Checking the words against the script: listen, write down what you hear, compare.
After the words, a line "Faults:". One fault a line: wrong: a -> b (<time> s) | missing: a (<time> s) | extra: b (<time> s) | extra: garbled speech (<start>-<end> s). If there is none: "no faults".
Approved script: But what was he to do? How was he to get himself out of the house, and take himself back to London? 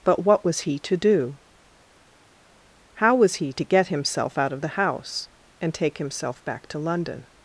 But what was he to do? How was he to get himself out of the house, and take himself back to London?
Faults:
no faults